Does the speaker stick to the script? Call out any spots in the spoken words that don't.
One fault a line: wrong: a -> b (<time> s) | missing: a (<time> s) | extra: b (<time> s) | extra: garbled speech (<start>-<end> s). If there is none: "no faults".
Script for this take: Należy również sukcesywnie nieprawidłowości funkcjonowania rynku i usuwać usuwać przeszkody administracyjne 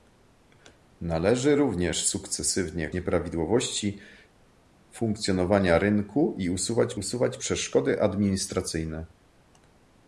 no faults